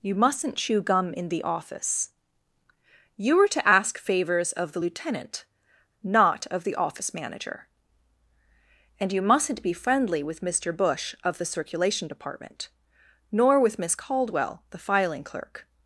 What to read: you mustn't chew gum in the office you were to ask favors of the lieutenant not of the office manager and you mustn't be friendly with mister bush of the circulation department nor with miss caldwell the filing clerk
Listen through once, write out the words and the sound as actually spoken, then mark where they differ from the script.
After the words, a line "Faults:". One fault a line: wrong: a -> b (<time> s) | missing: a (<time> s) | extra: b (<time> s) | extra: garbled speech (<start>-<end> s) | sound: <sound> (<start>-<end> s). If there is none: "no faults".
you mustn't chew gum in the office you were to ask favors of the lieutenant not of the office manager and you mustn't be friendly with mister bush of the circulation department nor with miss caldwell the filing clerk
Faults:
no faults